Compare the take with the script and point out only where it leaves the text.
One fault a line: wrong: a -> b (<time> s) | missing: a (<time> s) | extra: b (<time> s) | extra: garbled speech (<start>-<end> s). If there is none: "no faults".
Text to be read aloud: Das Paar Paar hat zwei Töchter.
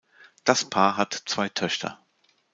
missing: Paar (1.0 s)